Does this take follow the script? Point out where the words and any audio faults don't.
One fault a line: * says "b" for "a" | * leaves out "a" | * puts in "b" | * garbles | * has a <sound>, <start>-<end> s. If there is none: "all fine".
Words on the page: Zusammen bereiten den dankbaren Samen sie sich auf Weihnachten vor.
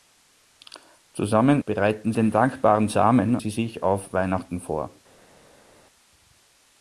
all fine